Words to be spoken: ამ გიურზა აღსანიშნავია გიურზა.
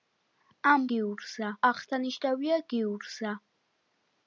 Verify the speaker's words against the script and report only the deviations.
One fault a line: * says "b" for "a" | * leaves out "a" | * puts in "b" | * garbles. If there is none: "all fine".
all fine